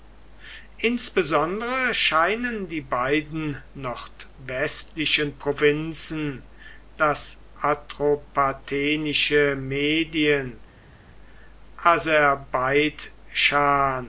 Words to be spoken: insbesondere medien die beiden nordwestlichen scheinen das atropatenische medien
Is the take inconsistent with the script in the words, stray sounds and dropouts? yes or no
yes